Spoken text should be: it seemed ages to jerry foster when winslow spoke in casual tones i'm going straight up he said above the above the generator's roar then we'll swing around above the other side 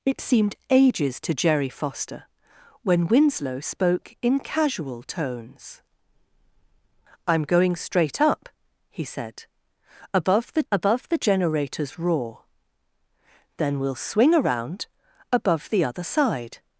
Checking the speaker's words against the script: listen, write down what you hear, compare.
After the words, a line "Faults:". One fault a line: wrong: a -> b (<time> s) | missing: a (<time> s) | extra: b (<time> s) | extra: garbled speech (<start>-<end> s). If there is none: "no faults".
it seemed ages to jerry foster when winslow spoke in casual tones i'm going straight up he said above the above the generator's roar then we'll swing around above the other side
Faults:
no faults